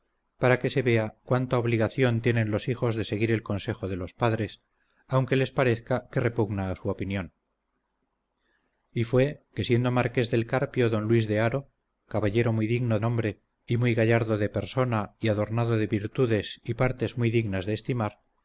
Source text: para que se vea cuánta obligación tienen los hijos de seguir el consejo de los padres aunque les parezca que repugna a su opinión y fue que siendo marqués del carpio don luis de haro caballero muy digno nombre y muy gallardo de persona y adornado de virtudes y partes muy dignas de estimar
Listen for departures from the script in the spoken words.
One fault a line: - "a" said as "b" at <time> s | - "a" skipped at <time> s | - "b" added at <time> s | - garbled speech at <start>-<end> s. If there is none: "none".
none